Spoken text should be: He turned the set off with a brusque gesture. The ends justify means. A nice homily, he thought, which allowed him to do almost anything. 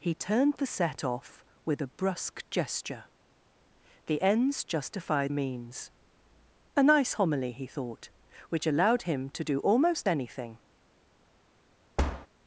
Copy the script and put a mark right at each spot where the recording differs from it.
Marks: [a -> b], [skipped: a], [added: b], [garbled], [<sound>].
He turned the set off with a brusque gesture. The ends justify means. A nice homily, he thought, which allowed him to do almost anything. [thud]